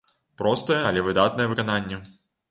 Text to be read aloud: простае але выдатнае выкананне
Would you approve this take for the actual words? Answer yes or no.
yes